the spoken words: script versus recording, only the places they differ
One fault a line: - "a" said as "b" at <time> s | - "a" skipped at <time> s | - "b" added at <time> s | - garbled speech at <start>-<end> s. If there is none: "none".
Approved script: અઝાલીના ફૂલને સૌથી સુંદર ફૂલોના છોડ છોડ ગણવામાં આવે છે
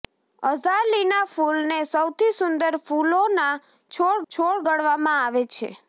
none